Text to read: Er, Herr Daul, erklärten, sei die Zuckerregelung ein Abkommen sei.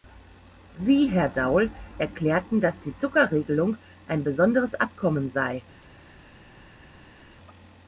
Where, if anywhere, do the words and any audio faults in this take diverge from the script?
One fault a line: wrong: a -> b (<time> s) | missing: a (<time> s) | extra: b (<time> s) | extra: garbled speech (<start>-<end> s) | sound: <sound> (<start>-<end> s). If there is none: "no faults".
wrong: Er -> Sie (0.8 s)
wrong: sei -> dass (2.6 s)
extra: besonderes (4.2 s)